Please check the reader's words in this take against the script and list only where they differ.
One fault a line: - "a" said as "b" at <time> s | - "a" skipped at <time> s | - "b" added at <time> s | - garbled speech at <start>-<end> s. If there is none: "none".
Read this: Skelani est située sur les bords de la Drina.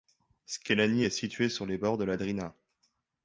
none